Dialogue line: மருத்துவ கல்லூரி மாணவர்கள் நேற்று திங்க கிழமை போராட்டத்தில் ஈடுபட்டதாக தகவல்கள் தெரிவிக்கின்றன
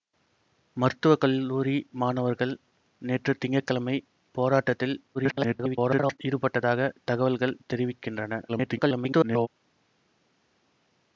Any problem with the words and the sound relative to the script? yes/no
yes